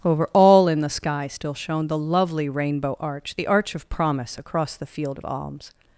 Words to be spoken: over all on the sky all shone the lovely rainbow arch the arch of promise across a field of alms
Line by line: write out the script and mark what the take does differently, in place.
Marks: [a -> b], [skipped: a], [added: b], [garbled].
over all [on -> in] the sky [all -> still] shone the lovely rainbow arch the arch of promise across [a -> the] field of alms